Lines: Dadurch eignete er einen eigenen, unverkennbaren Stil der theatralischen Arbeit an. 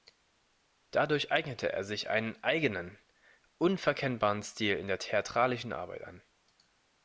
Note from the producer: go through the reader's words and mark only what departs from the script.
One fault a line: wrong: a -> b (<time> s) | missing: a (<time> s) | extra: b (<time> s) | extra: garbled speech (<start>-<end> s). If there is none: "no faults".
extra: sich (1.8 s)
extra: in (4.8 s)